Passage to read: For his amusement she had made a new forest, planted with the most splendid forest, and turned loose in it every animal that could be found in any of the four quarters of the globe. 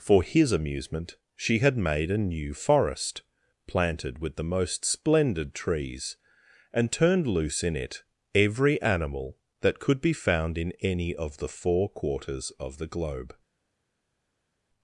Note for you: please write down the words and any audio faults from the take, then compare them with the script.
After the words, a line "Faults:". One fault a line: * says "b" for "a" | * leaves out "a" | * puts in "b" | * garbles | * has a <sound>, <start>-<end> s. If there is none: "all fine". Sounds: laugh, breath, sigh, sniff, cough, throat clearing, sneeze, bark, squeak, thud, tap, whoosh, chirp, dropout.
For his amusement she had made a new forest, planted with the most splendid trees, and turned loose in it every animal that could be found in any of the four quarters of the globe.
Faults:
* says "trees" for "forest"